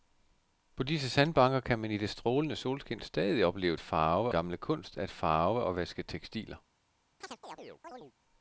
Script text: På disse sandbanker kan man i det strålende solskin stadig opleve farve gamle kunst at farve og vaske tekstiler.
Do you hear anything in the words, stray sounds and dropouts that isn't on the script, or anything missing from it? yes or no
yes